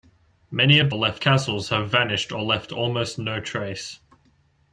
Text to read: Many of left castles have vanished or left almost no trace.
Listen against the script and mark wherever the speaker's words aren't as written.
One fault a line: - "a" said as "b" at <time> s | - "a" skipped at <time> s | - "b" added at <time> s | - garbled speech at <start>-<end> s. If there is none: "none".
none